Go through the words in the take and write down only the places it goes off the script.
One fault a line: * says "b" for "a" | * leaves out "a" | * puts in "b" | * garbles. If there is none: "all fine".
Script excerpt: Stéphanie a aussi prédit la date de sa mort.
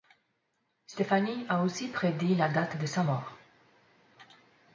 all fine